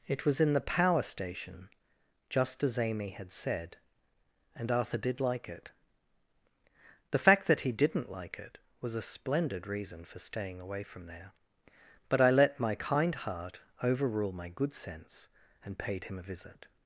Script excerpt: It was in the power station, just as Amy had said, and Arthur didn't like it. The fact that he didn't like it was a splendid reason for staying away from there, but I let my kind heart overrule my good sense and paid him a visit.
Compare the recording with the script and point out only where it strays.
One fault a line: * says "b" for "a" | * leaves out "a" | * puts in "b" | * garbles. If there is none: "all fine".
* says "did" for "didn't"